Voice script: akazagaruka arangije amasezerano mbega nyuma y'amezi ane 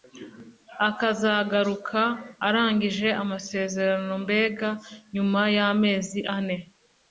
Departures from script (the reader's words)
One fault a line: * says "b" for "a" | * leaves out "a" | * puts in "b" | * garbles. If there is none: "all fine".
all fine